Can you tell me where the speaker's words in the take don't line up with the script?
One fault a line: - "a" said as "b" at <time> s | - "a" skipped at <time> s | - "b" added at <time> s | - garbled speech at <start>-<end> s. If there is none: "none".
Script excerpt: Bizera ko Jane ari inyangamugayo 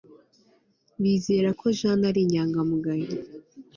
none